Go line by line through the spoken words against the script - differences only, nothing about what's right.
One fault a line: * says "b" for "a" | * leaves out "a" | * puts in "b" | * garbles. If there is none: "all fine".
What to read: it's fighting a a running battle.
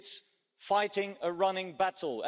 * leaves out "a"